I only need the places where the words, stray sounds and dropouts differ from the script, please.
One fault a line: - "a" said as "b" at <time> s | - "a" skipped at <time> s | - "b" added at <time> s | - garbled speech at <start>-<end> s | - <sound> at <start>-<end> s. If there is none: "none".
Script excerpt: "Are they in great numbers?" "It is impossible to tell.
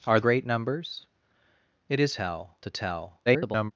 - "they in" skipped at 0.2 s
- "impossible" said as "tell" at 2.1 s
- garbled speech at 3.3-3.7 s